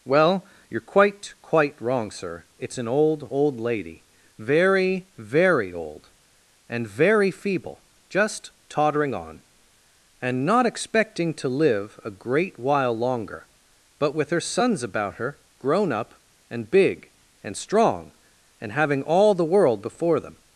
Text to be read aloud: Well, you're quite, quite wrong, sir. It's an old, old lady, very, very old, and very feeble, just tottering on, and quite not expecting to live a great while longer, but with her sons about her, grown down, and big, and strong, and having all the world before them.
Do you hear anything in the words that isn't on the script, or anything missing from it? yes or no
yes